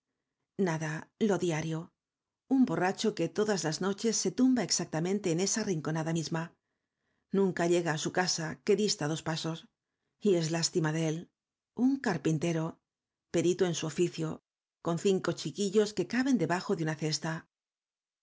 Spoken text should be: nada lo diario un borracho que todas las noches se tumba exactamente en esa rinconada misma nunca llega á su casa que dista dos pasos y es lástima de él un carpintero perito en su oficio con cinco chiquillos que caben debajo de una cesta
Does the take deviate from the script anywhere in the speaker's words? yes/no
no